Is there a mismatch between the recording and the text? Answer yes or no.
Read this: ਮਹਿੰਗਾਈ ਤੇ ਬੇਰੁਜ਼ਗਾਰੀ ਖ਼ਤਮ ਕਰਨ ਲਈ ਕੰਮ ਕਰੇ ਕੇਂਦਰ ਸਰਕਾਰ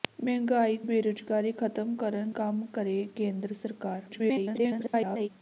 yes